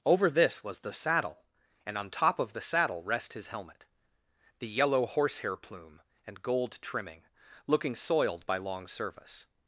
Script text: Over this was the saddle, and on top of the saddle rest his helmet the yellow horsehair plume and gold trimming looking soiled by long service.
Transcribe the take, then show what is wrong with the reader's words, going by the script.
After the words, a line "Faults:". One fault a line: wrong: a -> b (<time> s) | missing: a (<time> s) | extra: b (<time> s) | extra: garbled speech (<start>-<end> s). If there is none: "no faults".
Over this was the saddle, and on top of the saddle rest his helmet the yellow horsehair plume and gold trimming looking soiled by long service.
Faults:
no faults